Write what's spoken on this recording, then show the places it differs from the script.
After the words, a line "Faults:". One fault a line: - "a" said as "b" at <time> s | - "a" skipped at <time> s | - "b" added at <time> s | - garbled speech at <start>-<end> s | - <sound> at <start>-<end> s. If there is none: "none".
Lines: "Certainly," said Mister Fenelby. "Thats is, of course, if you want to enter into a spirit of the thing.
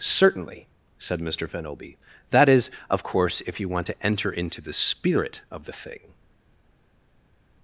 "Certainly," said Mister Fenelby. "That is, of course, if you want to enter into the spirit of the thing.
Faults:
- "Thats" said as "That" at 2.3 s
- "a" said as "the" at 4.6 s